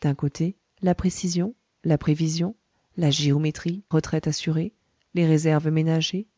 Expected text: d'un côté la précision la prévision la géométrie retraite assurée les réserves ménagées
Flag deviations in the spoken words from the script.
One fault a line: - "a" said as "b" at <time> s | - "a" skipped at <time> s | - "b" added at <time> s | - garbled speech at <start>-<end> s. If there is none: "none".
none